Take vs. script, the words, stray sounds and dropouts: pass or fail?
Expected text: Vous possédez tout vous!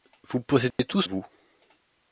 fail